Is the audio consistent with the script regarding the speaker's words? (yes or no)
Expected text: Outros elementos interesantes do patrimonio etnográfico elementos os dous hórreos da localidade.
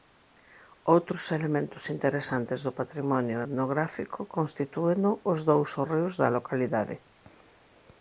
no